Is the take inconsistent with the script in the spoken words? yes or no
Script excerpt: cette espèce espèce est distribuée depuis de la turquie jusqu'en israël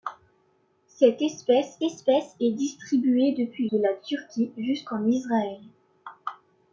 no